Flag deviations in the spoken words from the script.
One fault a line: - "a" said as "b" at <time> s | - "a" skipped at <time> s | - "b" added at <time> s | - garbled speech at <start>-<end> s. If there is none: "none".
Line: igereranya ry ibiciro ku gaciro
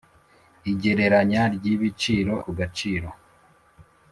none